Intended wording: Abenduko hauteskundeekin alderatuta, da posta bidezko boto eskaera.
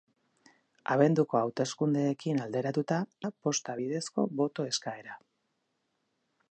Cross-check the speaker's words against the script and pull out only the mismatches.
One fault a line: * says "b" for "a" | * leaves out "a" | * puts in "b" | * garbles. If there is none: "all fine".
all fine